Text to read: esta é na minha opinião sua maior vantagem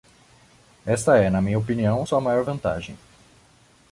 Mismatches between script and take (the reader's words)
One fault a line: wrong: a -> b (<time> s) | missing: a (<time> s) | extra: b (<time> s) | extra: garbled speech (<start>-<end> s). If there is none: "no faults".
no faults